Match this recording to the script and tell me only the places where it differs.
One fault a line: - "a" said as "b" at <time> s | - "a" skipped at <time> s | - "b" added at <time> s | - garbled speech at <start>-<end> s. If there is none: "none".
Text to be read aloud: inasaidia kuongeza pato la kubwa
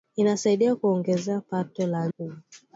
none